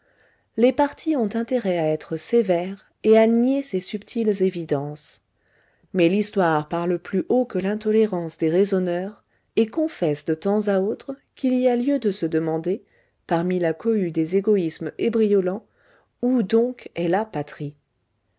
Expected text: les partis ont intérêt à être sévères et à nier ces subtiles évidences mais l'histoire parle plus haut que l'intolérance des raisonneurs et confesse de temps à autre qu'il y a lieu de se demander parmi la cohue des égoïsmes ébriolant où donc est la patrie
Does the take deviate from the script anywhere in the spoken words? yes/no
no